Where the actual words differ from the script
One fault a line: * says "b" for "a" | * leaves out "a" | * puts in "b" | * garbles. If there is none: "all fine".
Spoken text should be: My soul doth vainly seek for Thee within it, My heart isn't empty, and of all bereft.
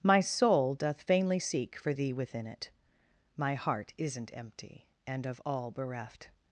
all fine